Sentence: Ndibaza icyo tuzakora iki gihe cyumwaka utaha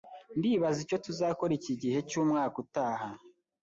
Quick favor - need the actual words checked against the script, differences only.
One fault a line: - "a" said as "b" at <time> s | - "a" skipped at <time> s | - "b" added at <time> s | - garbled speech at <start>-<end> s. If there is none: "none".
none